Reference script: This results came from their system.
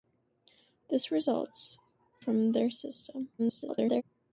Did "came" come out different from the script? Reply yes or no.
yes